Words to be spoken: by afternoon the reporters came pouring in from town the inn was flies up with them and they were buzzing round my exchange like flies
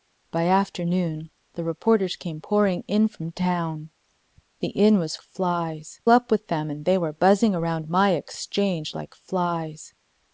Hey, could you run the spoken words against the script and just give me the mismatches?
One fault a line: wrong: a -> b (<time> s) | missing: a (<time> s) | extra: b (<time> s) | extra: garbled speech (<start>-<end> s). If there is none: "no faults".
no faults